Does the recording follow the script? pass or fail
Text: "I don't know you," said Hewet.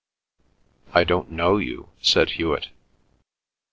pass